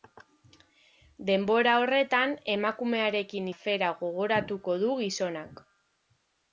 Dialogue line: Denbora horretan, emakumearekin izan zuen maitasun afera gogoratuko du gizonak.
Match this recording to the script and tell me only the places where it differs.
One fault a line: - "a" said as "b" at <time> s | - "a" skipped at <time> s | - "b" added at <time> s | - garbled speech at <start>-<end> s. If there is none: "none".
- "izan zuen maitasun" skipped at 3.5 s